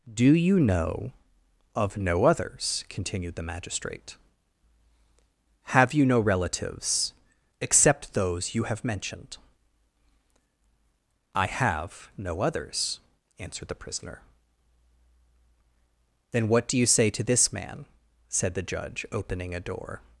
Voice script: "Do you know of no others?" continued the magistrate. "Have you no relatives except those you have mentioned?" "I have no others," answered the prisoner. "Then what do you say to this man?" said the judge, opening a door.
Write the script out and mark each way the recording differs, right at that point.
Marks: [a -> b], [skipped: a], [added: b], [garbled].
"Do you know of no others?" continued the magistrate. "Have you no relatives except those you have mentioned?" "I have no others," answered the prisoner. "Then what do you say to this man?" said the judge, opening a door.